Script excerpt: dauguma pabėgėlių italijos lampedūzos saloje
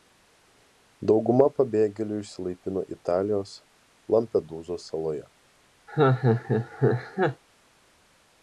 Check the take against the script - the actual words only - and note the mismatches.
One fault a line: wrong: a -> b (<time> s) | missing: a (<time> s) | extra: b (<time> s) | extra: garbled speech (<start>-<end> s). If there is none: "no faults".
extra: išsilaipino (2.2 s)